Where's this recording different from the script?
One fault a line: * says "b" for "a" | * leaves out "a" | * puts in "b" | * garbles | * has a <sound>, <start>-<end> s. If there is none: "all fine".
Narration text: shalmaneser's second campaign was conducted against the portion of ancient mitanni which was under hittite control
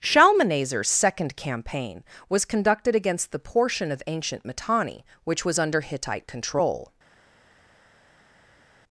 all fine